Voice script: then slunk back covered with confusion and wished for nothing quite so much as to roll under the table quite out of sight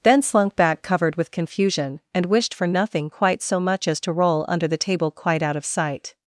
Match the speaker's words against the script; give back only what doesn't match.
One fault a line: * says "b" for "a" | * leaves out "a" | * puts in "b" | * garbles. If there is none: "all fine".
all fine